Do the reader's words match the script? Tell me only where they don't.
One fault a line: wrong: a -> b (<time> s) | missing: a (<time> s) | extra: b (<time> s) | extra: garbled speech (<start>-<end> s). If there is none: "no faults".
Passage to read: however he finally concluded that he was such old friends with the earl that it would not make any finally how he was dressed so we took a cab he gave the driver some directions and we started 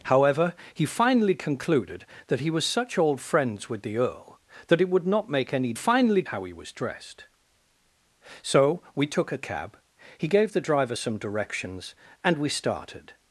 no faults